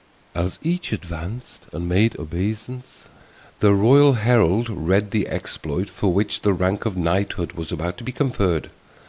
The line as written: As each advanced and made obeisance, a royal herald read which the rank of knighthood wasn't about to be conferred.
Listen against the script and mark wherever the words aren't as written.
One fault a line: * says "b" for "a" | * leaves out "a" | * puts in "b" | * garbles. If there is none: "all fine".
* says "the" for "a"
* puts in "the exploit for"
* says "was" for "wasn't"